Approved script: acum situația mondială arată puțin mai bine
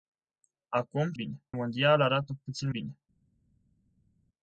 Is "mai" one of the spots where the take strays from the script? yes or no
yes